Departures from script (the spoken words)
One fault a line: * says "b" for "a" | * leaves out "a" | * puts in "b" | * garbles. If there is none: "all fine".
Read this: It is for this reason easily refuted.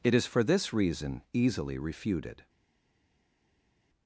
all fine